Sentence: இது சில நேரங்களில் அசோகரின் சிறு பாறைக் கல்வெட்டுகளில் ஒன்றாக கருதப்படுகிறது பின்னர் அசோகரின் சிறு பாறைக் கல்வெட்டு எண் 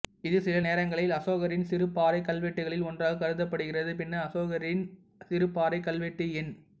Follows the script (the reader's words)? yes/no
yes